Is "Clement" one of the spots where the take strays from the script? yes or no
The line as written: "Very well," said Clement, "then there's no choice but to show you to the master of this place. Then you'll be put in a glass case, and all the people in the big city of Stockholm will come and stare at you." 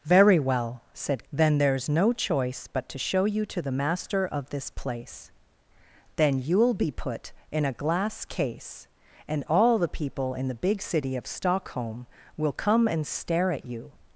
yes